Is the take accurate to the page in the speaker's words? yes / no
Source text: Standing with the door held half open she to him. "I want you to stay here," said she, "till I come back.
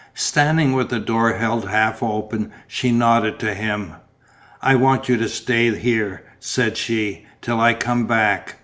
no